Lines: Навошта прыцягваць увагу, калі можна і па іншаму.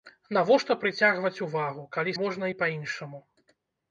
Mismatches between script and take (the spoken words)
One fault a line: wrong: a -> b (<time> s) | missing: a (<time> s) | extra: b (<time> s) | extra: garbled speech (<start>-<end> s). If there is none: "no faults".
no faults